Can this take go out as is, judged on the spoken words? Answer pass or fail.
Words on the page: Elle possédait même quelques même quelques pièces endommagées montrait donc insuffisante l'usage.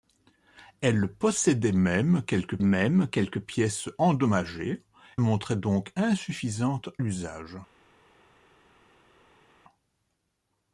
pass